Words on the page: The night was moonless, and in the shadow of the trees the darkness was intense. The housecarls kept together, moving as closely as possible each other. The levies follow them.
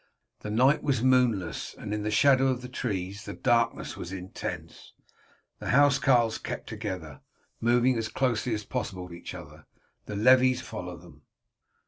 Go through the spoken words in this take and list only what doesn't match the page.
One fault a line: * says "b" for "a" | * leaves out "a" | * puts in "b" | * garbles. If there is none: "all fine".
all fine